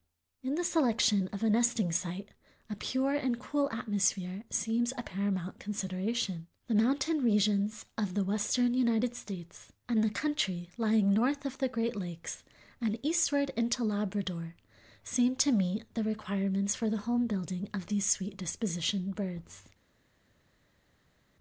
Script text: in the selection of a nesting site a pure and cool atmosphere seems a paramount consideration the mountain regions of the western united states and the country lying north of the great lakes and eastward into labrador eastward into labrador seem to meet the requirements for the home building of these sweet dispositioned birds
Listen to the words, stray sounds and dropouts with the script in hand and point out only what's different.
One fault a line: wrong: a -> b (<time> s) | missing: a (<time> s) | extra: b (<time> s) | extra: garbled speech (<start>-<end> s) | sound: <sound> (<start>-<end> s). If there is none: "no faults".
missing: eastward into labrador (14.6 s)